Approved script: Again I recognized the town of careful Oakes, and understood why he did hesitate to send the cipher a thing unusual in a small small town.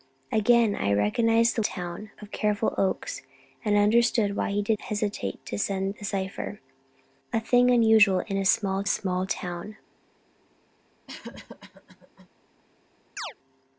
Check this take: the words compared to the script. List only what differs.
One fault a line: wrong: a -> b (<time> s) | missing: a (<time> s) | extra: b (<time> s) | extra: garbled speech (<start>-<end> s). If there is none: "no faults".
no faults